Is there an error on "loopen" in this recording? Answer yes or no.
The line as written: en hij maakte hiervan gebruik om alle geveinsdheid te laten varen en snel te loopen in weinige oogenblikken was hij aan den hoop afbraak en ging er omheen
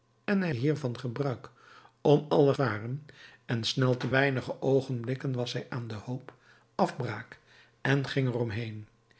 yes